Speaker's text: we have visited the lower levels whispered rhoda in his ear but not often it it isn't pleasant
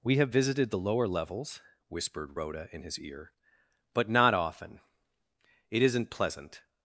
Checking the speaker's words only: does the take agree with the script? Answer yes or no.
no